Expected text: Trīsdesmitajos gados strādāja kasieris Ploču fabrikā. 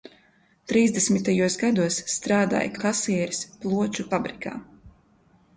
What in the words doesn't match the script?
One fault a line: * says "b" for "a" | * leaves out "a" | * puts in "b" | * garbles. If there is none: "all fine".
all fine